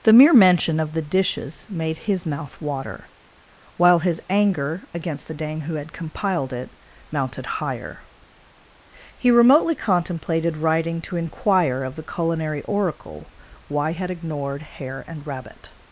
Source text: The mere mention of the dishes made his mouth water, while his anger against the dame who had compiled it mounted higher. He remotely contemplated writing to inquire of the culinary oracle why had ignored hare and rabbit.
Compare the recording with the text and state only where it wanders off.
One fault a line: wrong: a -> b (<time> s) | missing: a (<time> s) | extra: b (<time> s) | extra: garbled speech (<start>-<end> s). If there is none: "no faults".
no faults